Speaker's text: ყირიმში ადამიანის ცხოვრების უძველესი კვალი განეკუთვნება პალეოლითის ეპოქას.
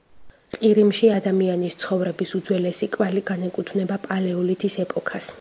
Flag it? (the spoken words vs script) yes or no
no